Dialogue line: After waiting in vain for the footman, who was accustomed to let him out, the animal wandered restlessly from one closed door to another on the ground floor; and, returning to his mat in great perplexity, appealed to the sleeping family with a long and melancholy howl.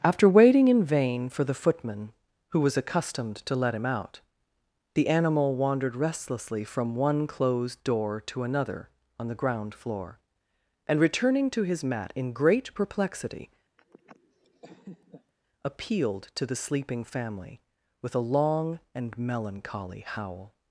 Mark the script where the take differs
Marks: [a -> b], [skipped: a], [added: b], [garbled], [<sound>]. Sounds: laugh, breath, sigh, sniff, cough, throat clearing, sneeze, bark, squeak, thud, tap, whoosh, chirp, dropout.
After waiting in vain for the footman, who was accustomed to let him out, the animal wandered restlessly from one closed door to another on the ground floor; and, returning to his mat in great perplexity, [laugh] appealed to the sleeping family with a long and melancholy howl.